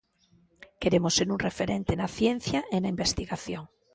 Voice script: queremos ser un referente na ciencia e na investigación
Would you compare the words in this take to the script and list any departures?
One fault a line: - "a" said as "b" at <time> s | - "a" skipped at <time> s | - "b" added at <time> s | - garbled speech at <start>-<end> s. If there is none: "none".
none